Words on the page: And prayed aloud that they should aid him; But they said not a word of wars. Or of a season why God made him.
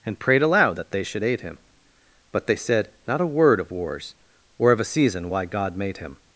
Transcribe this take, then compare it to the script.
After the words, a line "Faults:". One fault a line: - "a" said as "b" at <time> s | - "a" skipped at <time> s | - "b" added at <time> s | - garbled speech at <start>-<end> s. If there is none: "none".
And prayed aloud that they should aid him; But they said not a word of wars. Or of a season why God made him.
Faults:
none